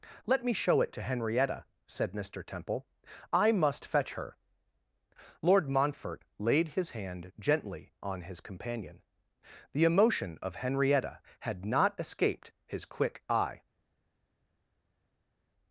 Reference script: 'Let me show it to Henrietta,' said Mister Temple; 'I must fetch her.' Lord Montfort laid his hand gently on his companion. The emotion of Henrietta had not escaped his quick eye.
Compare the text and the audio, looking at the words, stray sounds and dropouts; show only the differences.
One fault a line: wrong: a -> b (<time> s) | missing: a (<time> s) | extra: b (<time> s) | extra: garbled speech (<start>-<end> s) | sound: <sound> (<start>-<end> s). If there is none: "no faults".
no faults